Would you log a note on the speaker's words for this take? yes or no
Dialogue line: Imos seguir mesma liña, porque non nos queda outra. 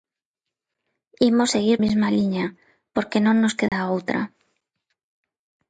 no